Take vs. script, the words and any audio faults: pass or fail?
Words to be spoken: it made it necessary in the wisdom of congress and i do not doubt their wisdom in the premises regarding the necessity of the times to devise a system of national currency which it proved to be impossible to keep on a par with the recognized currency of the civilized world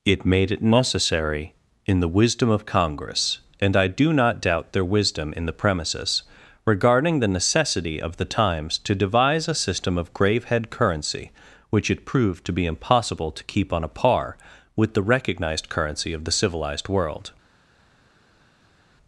fail